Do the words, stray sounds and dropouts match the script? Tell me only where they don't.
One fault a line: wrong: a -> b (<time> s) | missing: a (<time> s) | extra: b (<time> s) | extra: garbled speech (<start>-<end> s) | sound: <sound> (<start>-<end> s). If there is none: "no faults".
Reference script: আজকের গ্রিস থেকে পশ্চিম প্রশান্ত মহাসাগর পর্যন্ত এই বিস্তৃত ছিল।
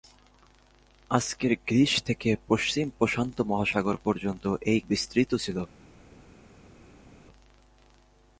no faults